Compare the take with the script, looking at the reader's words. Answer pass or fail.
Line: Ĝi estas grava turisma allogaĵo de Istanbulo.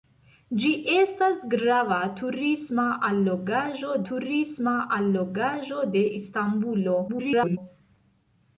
fail